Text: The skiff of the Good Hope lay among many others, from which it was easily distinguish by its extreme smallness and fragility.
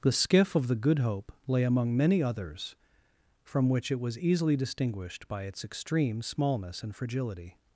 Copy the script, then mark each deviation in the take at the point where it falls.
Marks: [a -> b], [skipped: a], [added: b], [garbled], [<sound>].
The skiff of the Good Hope lay among many others, from which it was easily [distinguish -> distinguished] by its extreme smallness and fragility.